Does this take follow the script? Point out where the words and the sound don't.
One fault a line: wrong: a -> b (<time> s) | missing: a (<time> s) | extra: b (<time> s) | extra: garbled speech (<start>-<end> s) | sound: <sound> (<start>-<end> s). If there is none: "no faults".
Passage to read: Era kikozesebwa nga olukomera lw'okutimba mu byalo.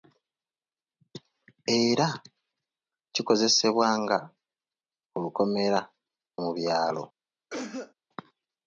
missing: lw'okutimba (5.8 s)
sound: cough (7.5-7.9 s)